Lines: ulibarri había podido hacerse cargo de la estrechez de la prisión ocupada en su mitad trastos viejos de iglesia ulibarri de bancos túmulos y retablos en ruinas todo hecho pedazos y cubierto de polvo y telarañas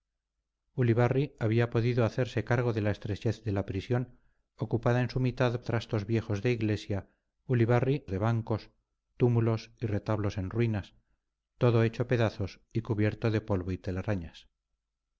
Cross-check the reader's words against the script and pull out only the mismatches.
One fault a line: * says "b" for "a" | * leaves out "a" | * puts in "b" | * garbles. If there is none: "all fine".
all fine